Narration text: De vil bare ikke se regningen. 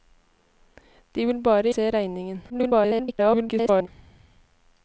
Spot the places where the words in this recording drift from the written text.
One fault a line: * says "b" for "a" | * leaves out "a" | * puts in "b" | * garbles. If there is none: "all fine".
* leaves out "ikke"
* garbles